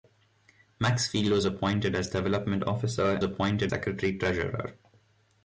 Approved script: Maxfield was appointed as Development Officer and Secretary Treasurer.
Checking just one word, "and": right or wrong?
wrong